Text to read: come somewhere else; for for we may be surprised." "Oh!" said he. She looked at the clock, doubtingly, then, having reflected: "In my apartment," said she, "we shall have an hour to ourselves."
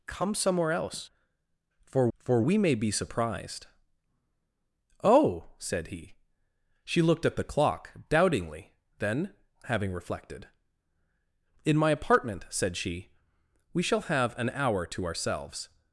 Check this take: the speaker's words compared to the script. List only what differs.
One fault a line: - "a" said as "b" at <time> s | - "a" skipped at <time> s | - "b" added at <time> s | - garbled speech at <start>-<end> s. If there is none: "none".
none